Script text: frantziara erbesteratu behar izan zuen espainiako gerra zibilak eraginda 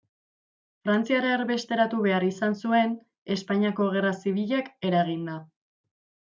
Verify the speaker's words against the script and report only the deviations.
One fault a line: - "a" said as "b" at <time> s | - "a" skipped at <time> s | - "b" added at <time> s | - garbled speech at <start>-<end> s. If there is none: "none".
none